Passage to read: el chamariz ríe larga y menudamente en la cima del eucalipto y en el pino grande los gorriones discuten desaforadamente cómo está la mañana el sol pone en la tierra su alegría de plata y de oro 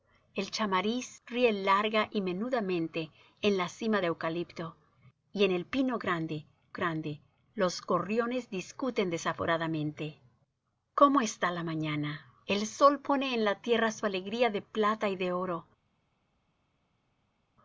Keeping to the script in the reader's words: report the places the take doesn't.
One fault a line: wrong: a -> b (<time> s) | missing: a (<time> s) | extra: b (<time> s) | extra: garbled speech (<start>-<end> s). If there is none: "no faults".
missing: del (4.0 s)
extra: grande (6.7 s)